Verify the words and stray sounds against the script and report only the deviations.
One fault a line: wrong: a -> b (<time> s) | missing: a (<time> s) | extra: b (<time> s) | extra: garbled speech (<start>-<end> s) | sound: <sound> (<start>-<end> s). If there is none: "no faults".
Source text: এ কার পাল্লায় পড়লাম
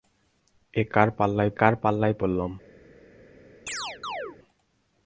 extra: কার পাল্লায় (1.6 s)
sound: chirp (3.7-4.4 s)